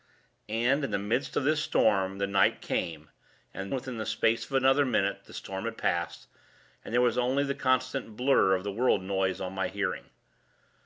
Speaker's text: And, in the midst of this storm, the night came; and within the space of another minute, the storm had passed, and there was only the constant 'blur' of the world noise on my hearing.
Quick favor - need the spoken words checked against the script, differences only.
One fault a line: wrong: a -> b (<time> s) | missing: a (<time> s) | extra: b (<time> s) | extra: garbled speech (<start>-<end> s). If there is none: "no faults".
no faults